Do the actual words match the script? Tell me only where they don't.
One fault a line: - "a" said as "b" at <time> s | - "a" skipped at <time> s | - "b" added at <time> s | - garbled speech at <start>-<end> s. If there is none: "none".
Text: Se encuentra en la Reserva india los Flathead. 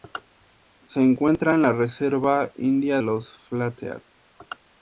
none